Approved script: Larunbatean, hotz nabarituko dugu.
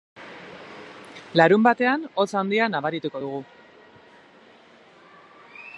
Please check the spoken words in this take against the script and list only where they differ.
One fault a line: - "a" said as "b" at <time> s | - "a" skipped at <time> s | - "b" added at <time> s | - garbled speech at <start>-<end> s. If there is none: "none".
- "handia" added at 2.4 s